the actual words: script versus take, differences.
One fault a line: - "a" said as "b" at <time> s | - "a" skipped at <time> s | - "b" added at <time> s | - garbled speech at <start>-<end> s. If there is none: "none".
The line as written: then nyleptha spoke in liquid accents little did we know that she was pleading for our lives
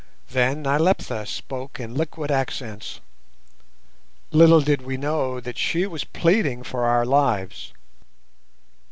none